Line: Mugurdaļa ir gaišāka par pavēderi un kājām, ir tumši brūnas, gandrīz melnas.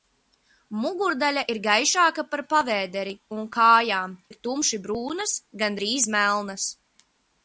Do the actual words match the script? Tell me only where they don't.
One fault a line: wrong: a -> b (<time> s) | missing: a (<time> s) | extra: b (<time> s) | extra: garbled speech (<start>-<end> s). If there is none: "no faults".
no faults